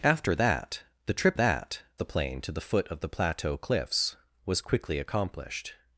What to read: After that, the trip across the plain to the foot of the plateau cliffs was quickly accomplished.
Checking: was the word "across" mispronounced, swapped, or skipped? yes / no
yes